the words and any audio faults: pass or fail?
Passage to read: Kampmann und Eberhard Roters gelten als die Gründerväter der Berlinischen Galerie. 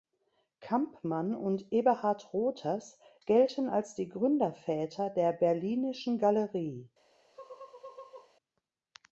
fail